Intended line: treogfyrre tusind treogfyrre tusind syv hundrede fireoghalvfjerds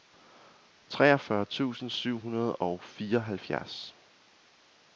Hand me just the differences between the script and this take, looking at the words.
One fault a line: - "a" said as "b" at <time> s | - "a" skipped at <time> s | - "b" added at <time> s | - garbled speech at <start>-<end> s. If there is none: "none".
- "treogfyrre tusind" skipped at 1.9 s
- "og" added at 2.6 s